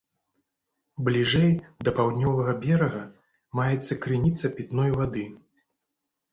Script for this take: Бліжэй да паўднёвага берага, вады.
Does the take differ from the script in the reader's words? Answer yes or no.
yes